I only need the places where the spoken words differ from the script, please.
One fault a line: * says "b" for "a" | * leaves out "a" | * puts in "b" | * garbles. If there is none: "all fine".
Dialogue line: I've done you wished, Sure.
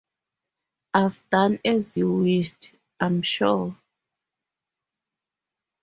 * puts in "as"
* puts in "I'm"